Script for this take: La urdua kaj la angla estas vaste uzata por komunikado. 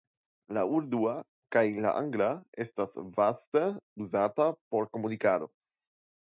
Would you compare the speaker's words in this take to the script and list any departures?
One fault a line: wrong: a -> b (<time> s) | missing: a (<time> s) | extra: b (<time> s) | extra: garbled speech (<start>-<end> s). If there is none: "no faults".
no faults